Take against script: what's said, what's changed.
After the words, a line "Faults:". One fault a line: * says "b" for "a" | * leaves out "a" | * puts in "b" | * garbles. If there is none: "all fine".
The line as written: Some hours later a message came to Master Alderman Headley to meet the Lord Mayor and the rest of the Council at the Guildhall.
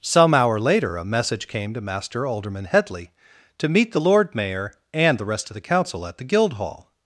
Some hour later a message came to Master Alderman Headley to meet the Lord Mayor and the rest of the Council at the Guildhall.
Faults:
* says "hour" for "hours"